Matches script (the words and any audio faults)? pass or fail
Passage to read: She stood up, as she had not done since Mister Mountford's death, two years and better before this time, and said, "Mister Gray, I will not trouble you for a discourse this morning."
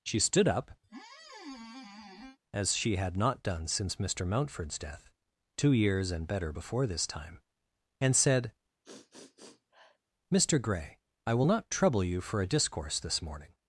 fail